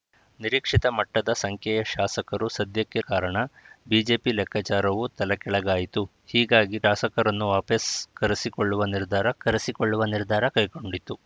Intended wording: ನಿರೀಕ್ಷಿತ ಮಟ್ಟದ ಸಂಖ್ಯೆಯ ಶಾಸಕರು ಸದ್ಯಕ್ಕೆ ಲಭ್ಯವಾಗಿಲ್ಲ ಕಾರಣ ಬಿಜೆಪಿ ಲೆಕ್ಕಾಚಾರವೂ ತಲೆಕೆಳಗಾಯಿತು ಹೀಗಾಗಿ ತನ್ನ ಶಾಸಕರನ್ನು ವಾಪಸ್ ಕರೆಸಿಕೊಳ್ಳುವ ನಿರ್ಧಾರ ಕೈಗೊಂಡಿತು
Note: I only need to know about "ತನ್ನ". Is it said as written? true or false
false